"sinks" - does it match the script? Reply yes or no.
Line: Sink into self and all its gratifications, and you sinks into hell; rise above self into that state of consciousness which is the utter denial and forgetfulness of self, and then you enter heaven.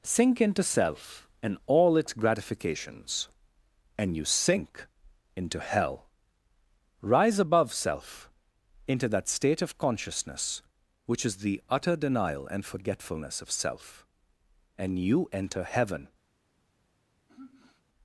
no